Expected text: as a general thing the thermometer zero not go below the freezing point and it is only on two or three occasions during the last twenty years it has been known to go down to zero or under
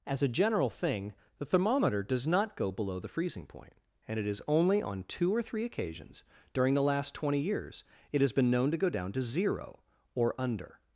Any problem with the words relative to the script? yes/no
yes